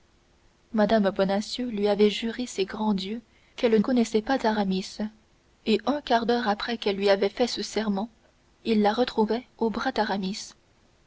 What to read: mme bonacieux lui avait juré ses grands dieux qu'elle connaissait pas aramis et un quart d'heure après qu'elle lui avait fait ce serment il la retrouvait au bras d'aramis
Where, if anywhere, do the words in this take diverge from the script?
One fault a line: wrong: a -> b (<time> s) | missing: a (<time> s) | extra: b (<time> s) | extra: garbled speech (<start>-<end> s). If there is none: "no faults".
no faults